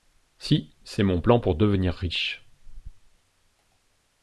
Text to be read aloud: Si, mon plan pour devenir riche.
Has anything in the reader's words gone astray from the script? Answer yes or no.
yes